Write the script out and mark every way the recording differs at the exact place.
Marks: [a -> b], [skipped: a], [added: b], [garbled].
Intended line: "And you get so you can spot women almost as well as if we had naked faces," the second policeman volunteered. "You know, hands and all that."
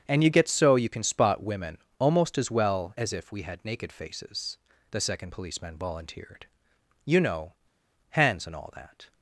"And you get so you can spot women almost as well as if we had naked faces," the second policeman volunteered. "You know, hands and all that."